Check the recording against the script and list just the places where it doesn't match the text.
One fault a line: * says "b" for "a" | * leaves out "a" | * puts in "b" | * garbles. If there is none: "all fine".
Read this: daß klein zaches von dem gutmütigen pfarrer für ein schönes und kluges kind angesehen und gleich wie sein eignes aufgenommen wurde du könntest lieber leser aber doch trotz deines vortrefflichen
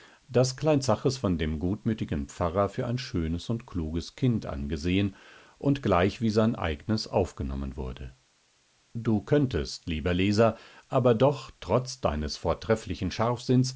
all fine